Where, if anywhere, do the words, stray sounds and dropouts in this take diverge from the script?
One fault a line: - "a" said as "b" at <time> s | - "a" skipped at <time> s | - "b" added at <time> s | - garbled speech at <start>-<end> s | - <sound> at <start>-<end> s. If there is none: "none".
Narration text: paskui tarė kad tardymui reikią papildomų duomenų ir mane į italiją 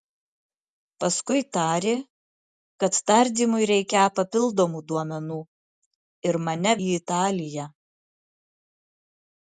none